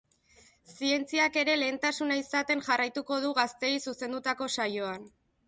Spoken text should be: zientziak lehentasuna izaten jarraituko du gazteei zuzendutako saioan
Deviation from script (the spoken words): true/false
true